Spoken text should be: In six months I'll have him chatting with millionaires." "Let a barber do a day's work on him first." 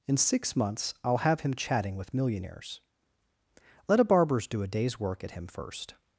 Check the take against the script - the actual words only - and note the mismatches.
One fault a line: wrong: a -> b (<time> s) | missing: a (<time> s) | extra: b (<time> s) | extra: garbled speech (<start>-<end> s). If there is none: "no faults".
wrong: barber -> barbers (4.0 s)
wrong: on -> at (5.2 s)